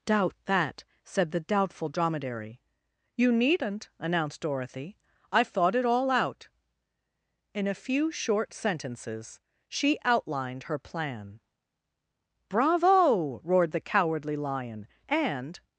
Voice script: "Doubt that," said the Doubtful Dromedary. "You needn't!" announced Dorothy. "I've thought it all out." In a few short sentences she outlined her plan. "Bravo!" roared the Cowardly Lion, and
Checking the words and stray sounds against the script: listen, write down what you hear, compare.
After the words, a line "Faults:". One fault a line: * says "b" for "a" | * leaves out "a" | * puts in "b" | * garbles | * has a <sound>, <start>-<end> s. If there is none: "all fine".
"Doubt that," said the Doubtful Dromedary. "You needn't!" announced Dorothy. "I've thought it all out." In a few short sentences she outlined her plan. "Bravo!" roared the Cowardly Lion, and
Faults:
all fine